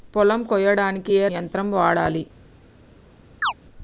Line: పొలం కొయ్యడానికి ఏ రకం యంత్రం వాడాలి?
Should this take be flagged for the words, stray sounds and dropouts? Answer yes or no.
yes